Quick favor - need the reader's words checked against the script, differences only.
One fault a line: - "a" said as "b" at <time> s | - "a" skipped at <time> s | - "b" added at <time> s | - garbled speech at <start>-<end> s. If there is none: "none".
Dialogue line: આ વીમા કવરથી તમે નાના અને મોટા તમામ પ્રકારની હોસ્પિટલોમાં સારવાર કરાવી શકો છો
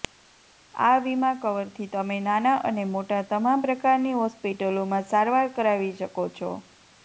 none